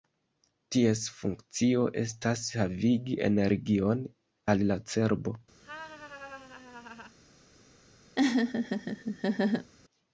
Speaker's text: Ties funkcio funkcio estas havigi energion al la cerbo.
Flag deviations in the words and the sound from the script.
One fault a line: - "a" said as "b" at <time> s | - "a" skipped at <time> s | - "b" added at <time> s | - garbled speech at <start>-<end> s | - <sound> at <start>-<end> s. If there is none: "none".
- "funkcio" skipped at 1.9 s
- laugh at 5.6-7.1 s
- laugh at 8.2-9.7 s